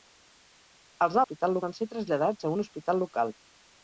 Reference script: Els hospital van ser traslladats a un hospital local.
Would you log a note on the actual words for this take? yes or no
no